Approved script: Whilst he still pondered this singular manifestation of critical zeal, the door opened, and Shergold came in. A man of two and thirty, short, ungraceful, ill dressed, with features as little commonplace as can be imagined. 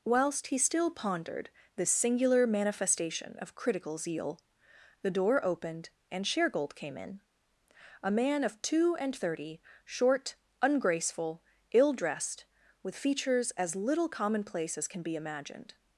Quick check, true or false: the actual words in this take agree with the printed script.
true